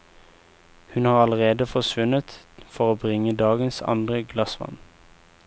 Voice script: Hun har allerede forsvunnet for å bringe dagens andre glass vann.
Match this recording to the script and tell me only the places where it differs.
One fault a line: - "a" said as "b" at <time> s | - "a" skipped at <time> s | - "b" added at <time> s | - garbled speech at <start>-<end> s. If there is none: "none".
none